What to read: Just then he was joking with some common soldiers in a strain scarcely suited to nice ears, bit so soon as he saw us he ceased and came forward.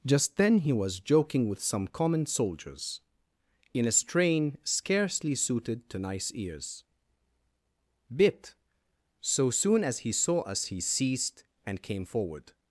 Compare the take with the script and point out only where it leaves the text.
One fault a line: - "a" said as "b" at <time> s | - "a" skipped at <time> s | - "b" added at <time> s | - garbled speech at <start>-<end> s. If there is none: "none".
none